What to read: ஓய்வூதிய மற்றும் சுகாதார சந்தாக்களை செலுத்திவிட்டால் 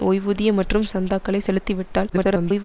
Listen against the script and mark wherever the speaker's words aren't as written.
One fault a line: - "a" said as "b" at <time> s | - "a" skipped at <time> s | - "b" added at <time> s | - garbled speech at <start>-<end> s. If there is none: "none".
- "சுகாதார" skipped at 0.8 s
- garbled speech at 2.1-2.6 s